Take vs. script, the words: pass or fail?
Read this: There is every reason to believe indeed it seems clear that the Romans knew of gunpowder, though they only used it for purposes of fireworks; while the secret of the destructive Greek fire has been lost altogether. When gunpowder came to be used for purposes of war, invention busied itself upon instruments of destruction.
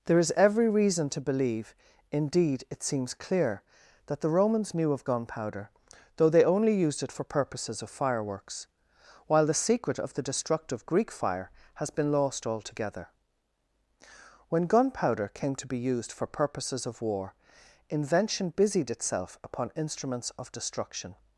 pass